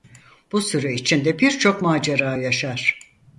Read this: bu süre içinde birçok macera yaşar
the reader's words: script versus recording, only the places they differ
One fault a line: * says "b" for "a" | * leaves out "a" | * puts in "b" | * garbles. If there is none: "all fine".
all fine